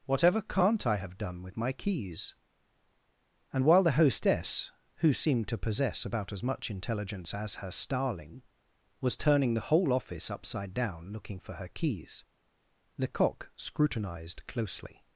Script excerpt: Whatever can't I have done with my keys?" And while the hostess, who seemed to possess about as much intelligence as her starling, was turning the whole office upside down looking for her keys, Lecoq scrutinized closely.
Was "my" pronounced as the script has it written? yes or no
yes